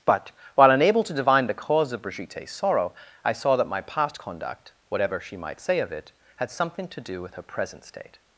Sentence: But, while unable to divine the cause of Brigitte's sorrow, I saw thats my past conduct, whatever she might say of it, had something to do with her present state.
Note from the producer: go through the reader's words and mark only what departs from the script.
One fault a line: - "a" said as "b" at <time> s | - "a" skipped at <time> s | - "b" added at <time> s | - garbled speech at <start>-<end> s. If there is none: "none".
- "thats" said as "that" at 3.5 s